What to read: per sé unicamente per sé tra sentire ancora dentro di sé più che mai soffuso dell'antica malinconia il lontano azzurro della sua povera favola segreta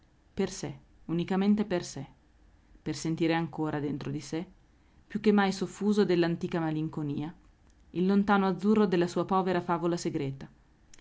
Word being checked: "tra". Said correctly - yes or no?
no